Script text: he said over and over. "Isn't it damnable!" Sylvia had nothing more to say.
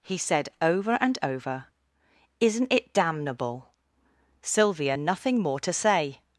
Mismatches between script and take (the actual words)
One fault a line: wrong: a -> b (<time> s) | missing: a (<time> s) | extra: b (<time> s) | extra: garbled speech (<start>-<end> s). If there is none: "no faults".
missing: had (5.0 s)